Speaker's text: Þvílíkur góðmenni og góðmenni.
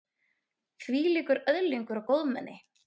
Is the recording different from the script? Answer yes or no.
yes